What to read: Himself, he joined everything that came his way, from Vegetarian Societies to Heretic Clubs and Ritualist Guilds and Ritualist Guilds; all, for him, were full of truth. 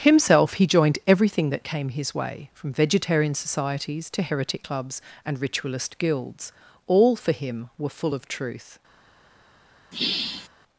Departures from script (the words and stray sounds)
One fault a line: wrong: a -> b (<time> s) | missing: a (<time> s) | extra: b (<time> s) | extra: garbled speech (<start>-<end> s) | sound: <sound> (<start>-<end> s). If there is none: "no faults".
missing: and Ritualist Guilds (6.5 s)
sound: sigh (9.9-10.5 s)